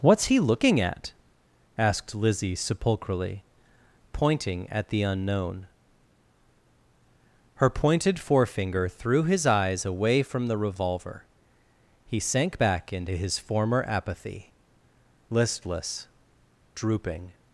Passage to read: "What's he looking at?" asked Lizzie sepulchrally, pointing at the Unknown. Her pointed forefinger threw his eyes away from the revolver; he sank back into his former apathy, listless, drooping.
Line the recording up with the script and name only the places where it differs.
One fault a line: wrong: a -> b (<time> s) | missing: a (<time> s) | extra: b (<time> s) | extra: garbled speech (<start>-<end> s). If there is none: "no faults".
no faults